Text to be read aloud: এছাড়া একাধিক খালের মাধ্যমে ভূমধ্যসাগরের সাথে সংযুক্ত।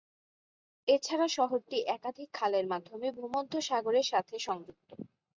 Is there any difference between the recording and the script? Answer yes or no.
yes